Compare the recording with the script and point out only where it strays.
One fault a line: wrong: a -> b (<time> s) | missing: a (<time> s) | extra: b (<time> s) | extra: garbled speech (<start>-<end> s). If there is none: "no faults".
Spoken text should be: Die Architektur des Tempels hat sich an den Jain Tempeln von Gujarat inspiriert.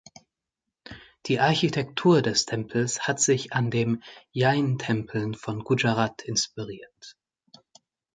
no faults